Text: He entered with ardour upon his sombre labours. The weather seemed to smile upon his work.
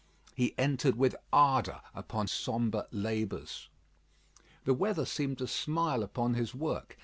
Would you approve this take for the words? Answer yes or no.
no